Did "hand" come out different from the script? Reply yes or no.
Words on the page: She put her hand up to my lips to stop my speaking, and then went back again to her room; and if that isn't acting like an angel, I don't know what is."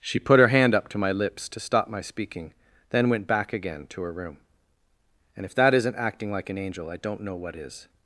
no